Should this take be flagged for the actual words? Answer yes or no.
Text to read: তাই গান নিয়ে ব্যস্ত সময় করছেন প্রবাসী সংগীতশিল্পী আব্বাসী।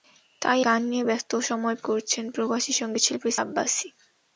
no